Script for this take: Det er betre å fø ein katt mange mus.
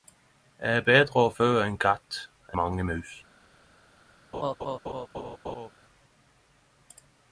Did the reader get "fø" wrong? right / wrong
right